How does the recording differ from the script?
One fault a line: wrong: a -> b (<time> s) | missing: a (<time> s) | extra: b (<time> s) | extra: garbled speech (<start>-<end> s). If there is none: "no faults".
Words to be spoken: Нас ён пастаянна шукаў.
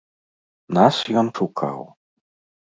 missing: пастаянна (1.3 s)